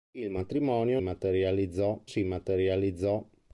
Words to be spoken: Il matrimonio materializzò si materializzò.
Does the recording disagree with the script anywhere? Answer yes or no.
no